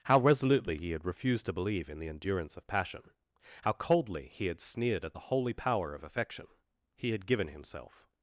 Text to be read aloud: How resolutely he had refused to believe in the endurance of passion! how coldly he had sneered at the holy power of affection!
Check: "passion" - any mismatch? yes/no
no